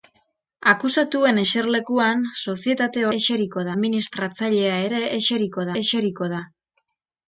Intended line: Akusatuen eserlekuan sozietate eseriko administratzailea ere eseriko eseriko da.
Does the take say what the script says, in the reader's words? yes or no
yes